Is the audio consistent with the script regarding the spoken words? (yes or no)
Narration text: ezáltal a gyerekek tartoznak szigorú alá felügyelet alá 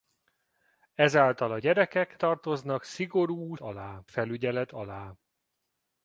yes